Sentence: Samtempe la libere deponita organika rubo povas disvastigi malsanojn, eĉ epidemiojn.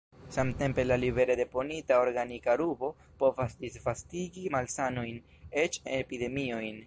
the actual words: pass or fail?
pass